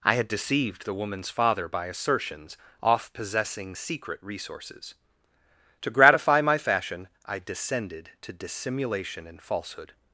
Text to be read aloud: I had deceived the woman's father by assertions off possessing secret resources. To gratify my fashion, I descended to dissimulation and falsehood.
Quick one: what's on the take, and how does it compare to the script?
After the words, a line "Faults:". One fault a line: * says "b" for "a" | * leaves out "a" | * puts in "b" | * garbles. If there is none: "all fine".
I had deceived the woman's father by assertions off possessing secret resources. To gratify my fashion, I descended to dissimulation and falsehood.
Faults:
all fine